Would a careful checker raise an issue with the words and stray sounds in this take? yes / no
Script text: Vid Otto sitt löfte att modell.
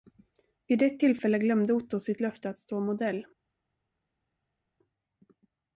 yes